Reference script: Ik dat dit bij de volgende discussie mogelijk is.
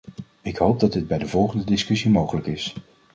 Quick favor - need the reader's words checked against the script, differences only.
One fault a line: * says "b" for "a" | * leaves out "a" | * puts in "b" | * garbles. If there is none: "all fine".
* puts in "hoop"